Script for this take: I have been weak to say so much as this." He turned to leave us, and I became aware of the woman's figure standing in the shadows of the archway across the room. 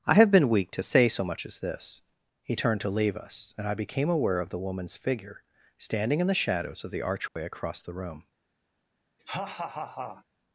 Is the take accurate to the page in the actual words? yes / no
yes